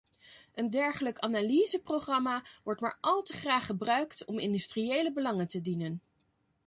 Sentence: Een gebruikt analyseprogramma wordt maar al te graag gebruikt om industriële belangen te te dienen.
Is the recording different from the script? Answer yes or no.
yes